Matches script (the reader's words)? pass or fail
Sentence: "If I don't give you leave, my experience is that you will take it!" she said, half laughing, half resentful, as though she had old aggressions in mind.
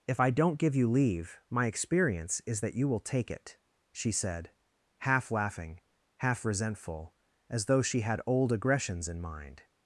pass